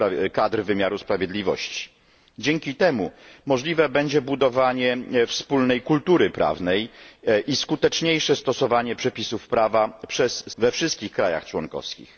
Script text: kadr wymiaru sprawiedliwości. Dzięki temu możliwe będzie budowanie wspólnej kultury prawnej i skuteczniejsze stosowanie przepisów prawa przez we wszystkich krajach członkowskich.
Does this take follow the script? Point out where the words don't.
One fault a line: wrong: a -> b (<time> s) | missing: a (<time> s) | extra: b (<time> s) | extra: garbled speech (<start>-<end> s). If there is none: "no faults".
no faults